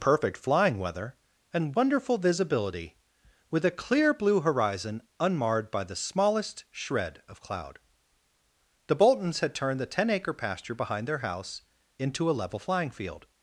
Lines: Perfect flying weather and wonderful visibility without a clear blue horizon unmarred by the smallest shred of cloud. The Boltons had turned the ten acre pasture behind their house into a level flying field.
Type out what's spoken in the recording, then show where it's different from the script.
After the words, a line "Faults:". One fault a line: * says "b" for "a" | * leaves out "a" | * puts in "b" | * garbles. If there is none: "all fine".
Perfect flying weather and wonderful visibility with a clear blue horizon unmarred by the smallest shred of cloud. The Boltons had turned the ten acre pasture behind their house into a level flying field.
Faults:
* says "with" for "without"